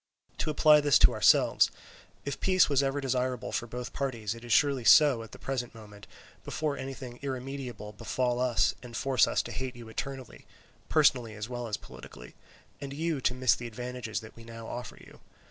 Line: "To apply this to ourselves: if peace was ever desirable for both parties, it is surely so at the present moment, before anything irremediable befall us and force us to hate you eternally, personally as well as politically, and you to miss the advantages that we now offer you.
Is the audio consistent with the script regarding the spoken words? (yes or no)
yes